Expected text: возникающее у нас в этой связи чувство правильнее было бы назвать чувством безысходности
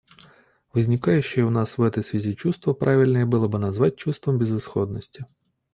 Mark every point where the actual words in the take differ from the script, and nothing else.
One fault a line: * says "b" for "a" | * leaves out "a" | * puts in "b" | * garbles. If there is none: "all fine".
all fine